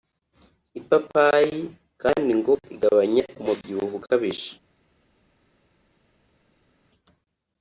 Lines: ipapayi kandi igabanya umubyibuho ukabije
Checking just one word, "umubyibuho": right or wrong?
right